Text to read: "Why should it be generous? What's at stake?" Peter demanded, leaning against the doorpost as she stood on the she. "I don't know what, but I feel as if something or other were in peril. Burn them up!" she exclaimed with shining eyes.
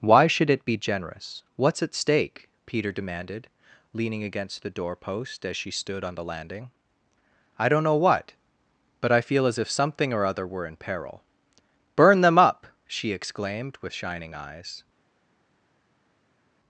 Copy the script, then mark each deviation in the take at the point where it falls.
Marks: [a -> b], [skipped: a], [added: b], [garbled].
"Why should it be generous? What's at stake?" Peter demanded, leaning against the doorpost as she stood on the [she. -> landing] "I don't know what, but I feel as if something or other were in peril. Burn them up!" she exclaimed with shining eyes.